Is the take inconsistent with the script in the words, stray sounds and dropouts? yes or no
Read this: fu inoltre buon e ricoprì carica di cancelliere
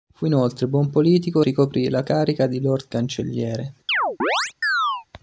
yes